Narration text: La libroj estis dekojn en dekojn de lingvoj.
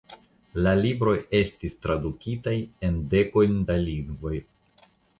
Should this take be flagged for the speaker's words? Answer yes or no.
yes